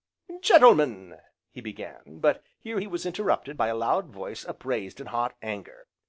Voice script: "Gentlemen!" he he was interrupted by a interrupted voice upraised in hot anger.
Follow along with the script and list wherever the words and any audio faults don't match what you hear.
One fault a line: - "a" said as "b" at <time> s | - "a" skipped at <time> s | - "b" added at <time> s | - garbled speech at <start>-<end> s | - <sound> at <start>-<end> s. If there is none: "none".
- "began but here" added at 1.6 s
- "interrupted" said as "loud" at 3.8 s